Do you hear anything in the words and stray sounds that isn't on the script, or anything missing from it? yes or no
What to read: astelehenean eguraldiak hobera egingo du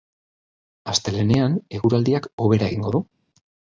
no